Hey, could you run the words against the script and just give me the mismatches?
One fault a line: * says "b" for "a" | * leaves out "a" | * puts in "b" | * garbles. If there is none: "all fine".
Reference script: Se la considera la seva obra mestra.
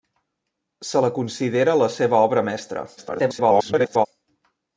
* garbles